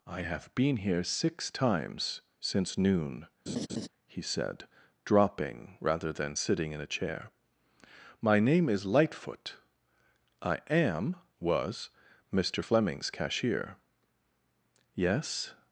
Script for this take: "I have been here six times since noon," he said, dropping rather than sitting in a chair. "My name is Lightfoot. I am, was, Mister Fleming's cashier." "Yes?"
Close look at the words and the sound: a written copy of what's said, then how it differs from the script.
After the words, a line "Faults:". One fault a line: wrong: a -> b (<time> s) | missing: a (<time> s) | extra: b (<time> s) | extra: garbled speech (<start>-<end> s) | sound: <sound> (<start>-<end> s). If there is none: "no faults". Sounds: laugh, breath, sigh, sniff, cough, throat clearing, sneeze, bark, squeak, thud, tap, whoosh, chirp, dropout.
"I have been here six times since noon," he said, dropping rather than sitting in a chair. "My name is Lightfoot. I am, was, Mister Fleming's cashier." "Yes?"
Faults:
sound: laugh (3.5-3.9 s)